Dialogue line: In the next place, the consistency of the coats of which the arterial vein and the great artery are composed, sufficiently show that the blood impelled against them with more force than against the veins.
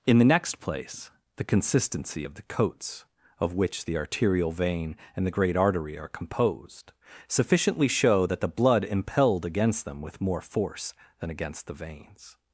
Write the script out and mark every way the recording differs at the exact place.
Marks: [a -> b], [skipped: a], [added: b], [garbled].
In the next place, the consistency of the coats of which the arterial vein and the great artery are composed, sufficiently show that the blood impelled against them with more force than against the veins.